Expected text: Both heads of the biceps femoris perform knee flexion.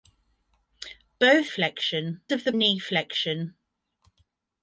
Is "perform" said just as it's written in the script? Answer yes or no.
no